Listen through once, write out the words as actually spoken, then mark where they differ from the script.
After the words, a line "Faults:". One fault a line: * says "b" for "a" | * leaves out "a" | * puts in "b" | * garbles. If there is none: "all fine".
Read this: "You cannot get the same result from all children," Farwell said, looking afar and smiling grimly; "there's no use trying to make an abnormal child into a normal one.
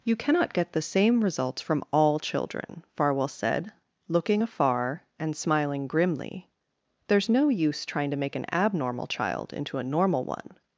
"You cannot get the same results from all children," Farwell said, looking afar and smiling grimly; "there's no use trying to make an abnormal child into a normal one.
Faults:
* says "results" for "result"